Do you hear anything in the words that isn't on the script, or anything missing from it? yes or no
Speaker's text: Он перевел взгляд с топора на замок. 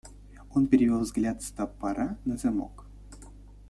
no